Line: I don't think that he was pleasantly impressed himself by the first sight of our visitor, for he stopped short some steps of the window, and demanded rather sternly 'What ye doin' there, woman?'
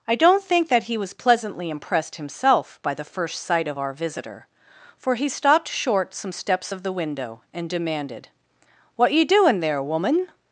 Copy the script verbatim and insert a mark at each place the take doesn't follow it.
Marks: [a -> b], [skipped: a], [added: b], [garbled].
I don't think that he was pleasantly impressed himself by the first sight of our visitor, for he stopped short some steps of the window, and demanded [skipped: rather sternly] 'What ye doin' there, woman?'